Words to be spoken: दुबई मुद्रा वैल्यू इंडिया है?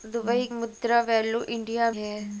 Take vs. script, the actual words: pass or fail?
pass